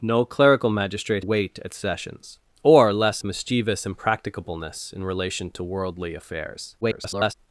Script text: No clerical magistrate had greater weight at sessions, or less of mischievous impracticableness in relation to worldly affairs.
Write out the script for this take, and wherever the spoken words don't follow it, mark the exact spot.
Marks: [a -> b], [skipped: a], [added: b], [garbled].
No clerical magistrate [skipped: had greater] weight at sessions, or less [skipped: of] mischievous impracticableness in relation to worldly affairs. [garbled]